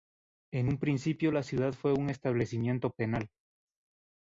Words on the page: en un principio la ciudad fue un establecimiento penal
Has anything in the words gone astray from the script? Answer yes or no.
no